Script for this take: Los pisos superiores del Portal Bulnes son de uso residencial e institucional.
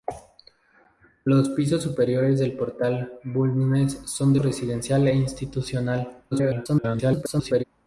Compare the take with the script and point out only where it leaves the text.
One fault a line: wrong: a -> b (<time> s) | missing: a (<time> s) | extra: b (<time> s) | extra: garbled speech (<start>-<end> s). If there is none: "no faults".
missing: uso (4.4 s)
extra: garbled speech (6.3-7.6 s)